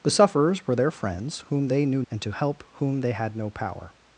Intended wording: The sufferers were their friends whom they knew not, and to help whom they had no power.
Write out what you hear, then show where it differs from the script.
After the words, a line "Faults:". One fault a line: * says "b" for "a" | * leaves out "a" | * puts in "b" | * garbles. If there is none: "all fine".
The sufferers were their friends whom they knew and to help whom they had no power.
Faults:
* leaves out "not"